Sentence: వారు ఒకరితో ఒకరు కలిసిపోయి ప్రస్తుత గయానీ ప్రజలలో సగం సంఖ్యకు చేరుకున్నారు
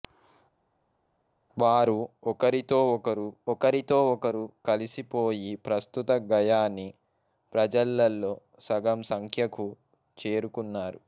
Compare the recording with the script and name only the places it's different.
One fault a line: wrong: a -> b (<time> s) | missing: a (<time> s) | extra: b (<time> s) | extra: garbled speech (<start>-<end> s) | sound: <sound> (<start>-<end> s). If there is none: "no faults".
extra: ఒకరితో ఒకరు (3.5 s)